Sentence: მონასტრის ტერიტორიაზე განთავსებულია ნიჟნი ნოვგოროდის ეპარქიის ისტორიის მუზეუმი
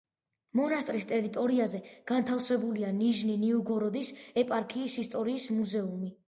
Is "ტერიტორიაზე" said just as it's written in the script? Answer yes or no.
yes